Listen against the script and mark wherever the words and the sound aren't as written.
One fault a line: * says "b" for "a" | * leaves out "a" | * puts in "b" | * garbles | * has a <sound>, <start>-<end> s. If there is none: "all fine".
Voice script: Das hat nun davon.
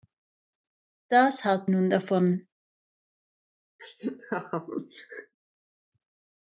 * has a laugh, 3.8-5.3 s